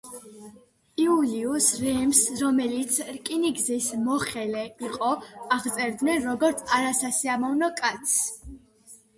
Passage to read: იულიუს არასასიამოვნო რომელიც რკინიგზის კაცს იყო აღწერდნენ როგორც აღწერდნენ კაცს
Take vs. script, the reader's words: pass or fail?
fail